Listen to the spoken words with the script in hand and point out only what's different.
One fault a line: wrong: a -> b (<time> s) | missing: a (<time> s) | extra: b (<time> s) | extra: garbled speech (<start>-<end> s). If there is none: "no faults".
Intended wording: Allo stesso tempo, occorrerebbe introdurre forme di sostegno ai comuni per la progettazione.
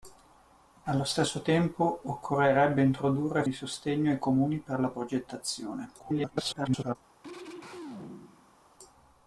missing: forme (3.4 s)
extra: garbled speech (6.0-7.0 s)